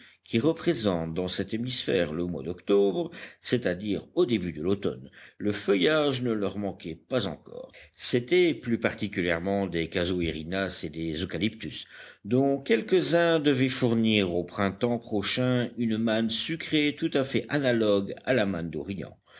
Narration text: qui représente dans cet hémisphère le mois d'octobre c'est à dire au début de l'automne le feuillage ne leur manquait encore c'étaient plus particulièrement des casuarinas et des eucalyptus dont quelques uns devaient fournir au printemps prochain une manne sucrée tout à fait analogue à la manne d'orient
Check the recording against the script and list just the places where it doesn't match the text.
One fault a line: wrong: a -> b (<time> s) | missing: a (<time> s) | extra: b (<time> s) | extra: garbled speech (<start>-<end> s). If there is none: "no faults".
extra: pas (7.0 s)